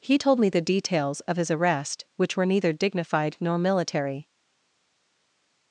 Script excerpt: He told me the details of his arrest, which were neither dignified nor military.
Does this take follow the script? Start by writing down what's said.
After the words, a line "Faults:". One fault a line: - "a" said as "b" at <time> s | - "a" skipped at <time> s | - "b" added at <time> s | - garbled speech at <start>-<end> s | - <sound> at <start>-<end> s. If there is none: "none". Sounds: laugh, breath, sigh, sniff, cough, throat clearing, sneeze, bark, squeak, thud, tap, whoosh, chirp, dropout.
He told me the details of his arrest, which were neither dignified nor military.
Faults:
none